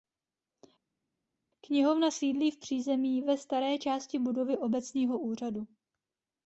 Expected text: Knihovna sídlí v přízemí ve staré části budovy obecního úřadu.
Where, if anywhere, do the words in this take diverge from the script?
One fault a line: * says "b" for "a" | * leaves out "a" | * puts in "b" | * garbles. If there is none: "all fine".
all fine